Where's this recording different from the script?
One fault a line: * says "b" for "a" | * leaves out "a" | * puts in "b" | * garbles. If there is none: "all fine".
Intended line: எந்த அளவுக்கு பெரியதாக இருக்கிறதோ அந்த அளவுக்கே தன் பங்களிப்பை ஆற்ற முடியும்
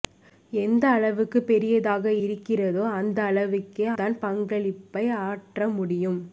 all fine